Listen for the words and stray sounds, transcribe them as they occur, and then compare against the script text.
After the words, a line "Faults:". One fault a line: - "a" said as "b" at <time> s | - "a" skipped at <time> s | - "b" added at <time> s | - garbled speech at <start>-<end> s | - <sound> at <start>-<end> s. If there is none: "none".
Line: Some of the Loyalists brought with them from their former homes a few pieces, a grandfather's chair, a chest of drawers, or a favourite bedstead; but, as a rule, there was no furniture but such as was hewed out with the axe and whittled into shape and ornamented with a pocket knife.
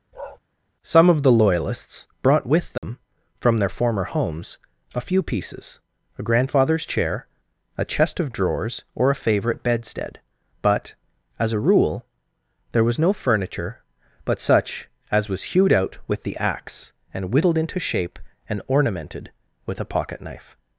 Some of the Loyalists brought with them from their former homes a few pieces, a grandfather's chair, a chest of drawers, or a favourite bedstead; but, as a rule, there was no furniture but such as was hewed out with the axe and whittled into shape and ornamented with a pocket knife.
Faults:
- bark at 0.1-0.4 s
- dropout at 2.8-2.8 s